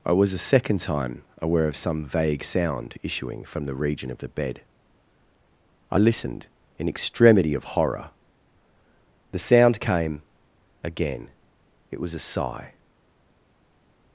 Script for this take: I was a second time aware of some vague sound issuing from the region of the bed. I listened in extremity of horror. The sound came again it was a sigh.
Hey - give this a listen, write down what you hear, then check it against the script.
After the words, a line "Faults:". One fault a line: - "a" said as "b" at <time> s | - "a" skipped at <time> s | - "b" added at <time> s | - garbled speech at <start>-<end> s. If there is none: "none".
I was a second time aware of some vague sound issuing from the region of the bed. I listened in extremity of horror. The sound came again it was a sigh.
Faults:
none